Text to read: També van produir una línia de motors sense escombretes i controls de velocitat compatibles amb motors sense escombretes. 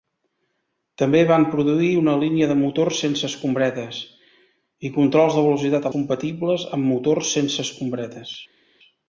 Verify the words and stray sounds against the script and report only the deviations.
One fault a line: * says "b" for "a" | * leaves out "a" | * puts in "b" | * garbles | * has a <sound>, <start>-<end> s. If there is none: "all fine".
all fine